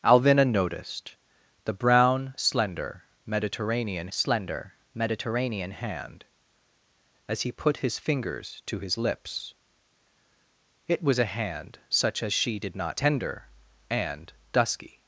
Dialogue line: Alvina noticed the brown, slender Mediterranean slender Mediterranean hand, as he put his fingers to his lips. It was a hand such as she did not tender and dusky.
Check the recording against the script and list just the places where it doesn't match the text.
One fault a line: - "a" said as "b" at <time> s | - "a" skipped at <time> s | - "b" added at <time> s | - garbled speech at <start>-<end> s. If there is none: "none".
none